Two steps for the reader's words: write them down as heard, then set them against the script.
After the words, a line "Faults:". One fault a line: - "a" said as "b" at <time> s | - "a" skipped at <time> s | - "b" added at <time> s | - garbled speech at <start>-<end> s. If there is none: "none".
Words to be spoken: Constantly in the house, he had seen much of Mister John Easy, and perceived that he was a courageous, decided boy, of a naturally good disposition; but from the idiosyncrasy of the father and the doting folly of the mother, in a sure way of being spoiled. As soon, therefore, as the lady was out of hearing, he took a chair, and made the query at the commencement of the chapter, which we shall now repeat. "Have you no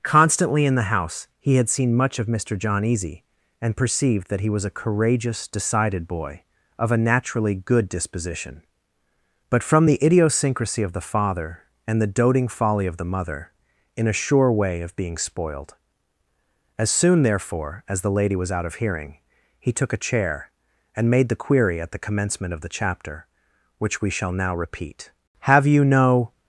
Constantly in the house, he had seen much of Mister John Easy, and perceived that he was a courageous, decided boy, of a naturally good disposition; but from the idiosyncrasy of the father and the doting folly of the mother, in a sure way of being spoiled. As soon, therefore, as the lady was out of hearing, he took a chair, and made the query at the commencement of the chapter, which we shall now repeat. "Have you no
Faults:
none